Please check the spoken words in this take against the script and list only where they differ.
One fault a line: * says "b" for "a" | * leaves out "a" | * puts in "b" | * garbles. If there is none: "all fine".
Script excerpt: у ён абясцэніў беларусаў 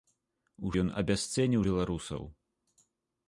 all fine